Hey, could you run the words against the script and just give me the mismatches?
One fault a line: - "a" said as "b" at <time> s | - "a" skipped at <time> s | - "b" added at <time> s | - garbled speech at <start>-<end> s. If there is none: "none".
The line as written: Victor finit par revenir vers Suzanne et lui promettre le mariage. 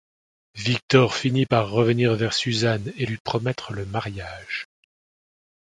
none